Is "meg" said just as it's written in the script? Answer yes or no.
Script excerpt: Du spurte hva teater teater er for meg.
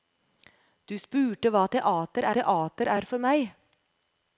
yes